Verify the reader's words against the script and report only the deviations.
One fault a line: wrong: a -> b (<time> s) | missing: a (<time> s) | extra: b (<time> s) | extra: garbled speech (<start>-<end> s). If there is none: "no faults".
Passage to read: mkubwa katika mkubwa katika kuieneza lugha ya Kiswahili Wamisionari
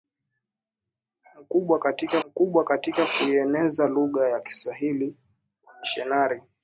no faults